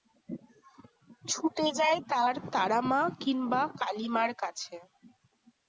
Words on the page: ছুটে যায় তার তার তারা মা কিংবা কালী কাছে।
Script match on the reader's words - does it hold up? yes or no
no